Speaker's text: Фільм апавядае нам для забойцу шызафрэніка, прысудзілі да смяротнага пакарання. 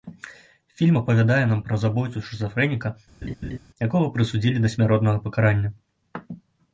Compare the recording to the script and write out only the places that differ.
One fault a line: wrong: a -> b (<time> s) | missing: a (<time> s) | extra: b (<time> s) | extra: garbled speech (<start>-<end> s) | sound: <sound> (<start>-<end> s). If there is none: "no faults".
wrong: для -> пра (1.7 s)
sound: laugh (3.2-3.6 s)
extra: якога (3.9 s)